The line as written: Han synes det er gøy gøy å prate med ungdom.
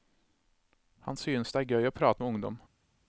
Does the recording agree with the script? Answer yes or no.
no